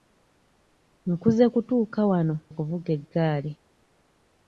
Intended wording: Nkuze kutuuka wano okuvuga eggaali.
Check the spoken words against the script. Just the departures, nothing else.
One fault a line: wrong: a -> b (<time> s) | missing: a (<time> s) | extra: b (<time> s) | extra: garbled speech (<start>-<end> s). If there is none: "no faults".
no faults